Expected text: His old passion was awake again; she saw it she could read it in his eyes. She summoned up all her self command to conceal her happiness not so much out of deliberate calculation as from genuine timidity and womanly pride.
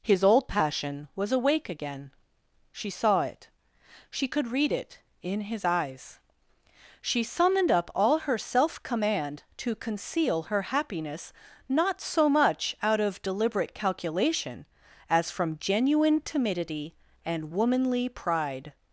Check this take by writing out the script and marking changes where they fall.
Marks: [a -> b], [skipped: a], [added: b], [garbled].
His old passion was awake again; she saw it she could read it in his eyes. She summoned up all her self command to conceal her happiness not so much out of deliberate calculation as from genuine timidity and womanly pride.